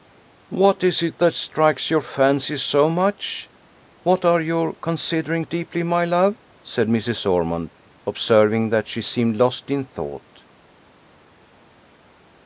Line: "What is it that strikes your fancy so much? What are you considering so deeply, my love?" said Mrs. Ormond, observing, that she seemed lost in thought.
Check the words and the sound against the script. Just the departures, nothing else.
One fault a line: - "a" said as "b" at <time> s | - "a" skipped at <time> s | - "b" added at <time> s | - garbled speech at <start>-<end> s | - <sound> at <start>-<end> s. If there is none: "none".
- "so" skipped at 5.5 s